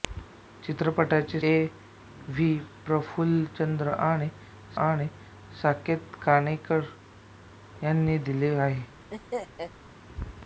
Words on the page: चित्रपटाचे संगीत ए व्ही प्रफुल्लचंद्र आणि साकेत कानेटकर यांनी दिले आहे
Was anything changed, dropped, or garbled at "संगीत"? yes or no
yes